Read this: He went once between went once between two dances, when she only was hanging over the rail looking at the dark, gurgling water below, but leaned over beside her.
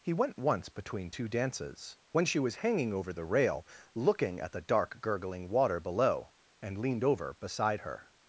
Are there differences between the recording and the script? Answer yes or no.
yes